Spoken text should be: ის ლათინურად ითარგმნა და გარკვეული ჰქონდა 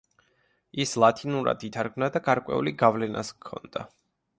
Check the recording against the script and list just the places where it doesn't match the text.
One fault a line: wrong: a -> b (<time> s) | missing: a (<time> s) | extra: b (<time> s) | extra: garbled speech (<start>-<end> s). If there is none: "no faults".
extra: გავლენაც (2.9 s)